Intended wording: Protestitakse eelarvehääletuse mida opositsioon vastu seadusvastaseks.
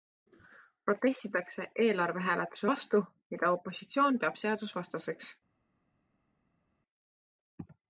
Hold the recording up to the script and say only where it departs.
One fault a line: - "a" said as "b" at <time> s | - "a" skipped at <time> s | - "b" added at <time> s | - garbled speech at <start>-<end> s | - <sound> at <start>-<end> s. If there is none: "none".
- "vastu" added at 2.7 s
- "vastu" said as "peab" at 4.2 s